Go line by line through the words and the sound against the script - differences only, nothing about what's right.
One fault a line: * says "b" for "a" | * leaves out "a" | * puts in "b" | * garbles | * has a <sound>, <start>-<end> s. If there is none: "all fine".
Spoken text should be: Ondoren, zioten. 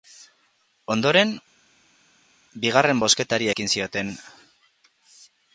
* puts in "bigarren bozketari ekin"